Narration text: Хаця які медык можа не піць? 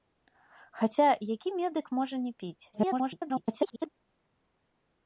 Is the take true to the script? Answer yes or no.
no